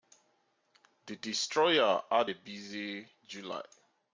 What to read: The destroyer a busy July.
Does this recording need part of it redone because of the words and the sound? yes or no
yes